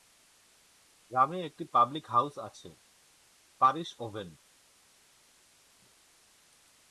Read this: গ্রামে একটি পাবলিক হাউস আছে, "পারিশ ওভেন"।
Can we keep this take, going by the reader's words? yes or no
yes